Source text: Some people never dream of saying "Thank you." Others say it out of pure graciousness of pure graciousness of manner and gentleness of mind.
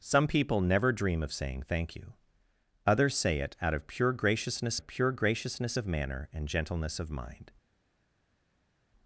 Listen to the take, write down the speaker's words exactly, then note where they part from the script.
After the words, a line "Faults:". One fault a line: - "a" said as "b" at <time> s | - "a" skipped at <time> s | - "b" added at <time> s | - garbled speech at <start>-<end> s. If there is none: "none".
Some people never dream of saying "Thank you." Others say it out of pure graciousness of pure graciousness of manner and gentleness of mind.
Faults:
none